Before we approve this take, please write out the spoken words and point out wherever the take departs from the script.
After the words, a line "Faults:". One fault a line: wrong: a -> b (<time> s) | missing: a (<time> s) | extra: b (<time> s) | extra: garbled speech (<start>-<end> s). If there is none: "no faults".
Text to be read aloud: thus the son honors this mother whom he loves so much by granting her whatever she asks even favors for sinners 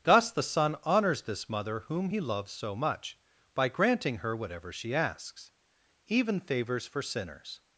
thus the son honors this mother whom he loves so much by granting her whatever she asks even favors for sinners
Faults:
no faults